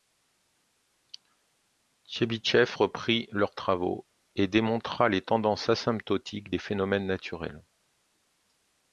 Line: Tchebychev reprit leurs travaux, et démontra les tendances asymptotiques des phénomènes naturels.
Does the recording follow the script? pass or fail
pass